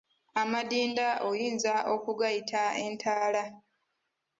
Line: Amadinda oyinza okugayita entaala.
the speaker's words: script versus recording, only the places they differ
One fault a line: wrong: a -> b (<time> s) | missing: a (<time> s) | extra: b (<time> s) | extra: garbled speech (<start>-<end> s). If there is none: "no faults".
no faults